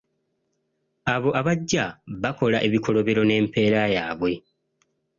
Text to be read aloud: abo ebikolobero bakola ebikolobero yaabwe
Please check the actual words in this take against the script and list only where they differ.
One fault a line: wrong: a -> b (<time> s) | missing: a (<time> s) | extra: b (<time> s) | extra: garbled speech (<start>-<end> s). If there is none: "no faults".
wrong: ebikolobero -> abajja (1.4 s)
extra: n'empeera (3.2 s)